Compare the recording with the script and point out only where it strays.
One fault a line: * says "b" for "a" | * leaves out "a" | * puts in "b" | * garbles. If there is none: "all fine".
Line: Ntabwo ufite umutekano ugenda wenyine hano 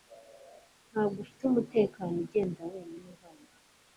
all fine